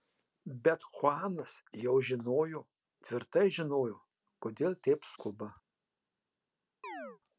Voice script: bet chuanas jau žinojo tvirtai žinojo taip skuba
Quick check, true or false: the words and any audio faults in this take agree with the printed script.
false